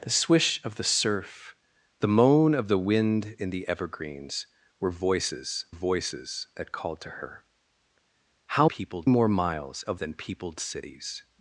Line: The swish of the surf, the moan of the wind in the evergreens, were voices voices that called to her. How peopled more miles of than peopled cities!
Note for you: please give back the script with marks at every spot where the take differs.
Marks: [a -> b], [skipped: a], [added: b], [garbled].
The swish of the surf, the moan of the wind in the evergreens, were voices voices that called to her. How peopled more miles of than peopled cities!